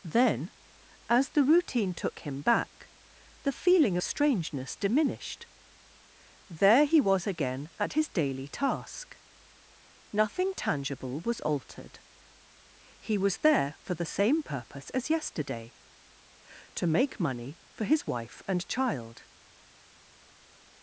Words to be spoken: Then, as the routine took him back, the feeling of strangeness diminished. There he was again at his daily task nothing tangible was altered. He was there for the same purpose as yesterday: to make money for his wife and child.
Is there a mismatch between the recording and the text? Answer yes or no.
yes